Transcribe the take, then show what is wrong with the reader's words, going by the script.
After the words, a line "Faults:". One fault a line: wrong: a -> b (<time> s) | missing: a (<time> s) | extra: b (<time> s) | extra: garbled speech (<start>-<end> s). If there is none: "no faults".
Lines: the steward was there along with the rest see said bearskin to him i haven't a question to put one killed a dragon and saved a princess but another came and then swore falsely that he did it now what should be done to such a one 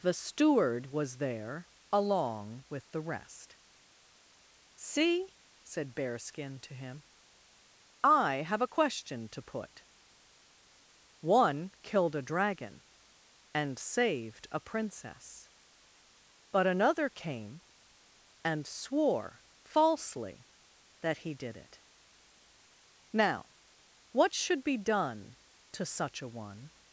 the steward was there along with the rest see said bearskin to him i have a question to put one killed a dragon and saved a princess but another came and swore falsely that he did it now what should be done to such a one
Faults:
wrong: haven't -> have (8.4 s)
missing: then (18.7 s)